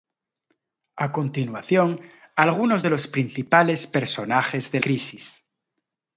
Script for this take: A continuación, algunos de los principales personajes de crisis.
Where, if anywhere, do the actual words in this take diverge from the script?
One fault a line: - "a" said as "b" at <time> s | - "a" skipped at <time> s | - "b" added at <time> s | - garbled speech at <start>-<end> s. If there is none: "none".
none